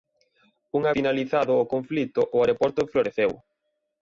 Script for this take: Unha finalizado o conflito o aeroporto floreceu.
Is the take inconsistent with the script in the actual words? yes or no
no